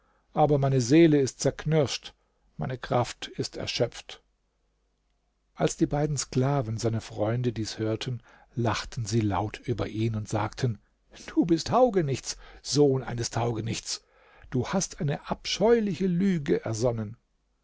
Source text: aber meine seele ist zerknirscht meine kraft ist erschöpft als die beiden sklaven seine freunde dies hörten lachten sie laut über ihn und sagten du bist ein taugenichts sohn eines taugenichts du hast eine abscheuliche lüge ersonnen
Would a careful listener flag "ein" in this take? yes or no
yes